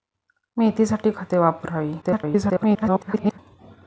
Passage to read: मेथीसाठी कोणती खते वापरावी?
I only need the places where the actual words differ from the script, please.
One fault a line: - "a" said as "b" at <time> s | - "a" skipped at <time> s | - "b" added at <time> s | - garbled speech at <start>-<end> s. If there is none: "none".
- "कोणती" skipped at 1.1 s
- garbled speech at 2.0-3.4 s